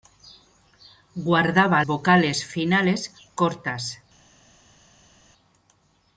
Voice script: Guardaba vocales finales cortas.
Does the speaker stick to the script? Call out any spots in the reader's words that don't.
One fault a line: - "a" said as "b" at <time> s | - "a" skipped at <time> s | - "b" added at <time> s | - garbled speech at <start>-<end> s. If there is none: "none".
none